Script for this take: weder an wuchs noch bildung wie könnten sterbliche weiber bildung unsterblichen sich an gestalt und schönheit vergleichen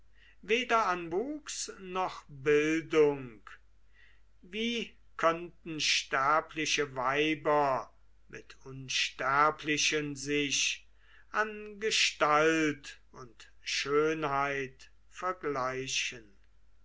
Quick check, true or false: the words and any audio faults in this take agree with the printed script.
false